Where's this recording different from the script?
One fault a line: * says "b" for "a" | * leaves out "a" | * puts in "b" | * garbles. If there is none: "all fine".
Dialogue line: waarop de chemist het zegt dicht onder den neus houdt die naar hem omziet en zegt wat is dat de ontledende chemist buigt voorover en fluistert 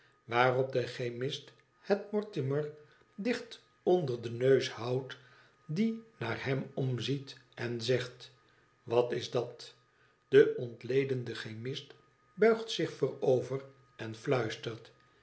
* says "mortimer" for "zegt"
* puts in "zich"